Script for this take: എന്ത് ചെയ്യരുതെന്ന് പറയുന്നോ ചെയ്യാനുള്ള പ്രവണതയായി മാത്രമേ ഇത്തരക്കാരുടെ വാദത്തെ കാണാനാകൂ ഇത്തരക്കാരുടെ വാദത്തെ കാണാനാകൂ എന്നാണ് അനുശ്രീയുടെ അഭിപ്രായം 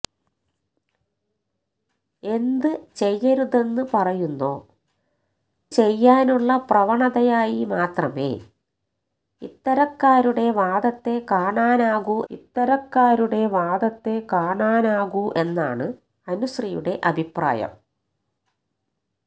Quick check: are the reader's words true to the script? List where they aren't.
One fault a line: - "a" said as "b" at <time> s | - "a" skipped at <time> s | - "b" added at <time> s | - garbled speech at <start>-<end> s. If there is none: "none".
none